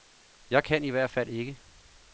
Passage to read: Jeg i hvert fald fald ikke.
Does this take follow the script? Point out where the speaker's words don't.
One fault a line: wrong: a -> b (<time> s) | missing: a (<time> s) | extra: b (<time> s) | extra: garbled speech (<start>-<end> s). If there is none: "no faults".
extra: kan (0.6 s)
missing: fald (1.3 s)